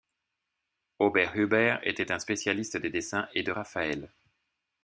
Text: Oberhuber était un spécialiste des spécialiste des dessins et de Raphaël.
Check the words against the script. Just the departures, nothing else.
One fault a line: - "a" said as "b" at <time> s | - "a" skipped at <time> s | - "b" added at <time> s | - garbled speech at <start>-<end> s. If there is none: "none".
- "spécialiste des" skipped at 2.9 s